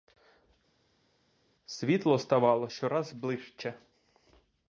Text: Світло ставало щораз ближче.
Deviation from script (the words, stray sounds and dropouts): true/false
false